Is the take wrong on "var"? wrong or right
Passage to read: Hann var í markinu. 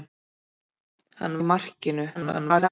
wrong